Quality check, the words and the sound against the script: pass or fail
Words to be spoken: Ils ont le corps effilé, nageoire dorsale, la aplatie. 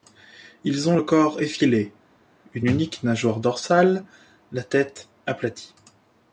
fail